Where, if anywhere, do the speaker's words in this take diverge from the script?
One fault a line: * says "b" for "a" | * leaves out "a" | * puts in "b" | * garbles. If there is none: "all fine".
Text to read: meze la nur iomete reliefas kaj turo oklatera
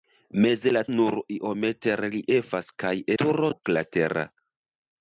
all fine